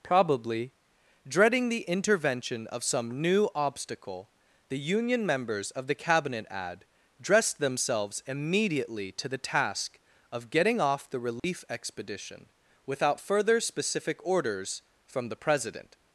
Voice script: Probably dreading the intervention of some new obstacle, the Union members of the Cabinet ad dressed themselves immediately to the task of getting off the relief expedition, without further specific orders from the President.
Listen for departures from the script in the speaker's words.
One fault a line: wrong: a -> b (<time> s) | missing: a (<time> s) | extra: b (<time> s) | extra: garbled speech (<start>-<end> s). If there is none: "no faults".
no faults